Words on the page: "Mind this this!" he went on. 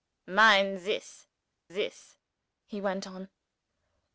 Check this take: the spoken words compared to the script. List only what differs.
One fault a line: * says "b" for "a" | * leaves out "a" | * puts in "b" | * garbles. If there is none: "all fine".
all fine